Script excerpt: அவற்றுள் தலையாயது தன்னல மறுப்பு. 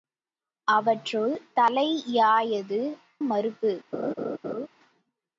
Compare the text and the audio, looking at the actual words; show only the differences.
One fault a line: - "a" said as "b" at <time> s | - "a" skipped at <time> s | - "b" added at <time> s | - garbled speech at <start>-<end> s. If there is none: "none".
- "தன்னல" skipped at 2.8 s